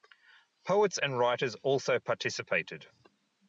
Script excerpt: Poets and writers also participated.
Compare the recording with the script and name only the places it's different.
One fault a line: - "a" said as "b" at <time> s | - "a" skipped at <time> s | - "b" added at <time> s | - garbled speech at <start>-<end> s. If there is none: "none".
none